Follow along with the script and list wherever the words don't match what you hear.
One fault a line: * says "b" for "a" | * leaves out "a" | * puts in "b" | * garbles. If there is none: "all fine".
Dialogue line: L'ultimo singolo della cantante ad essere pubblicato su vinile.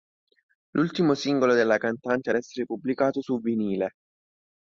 all fine